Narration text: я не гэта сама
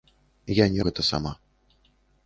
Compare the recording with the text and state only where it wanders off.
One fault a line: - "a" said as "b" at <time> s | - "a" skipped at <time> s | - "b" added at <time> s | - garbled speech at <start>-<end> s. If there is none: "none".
none